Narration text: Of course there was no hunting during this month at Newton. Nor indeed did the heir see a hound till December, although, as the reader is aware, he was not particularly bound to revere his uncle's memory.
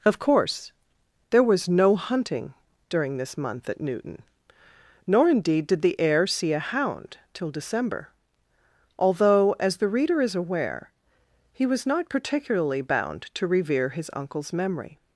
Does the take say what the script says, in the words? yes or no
yes